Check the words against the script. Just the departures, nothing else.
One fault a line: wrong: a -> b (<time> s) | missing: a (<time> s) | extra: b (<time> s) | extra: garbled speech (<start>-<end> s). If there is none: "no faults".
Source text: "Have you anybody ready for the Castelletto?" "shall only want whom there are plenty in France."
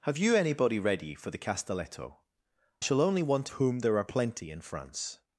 no faults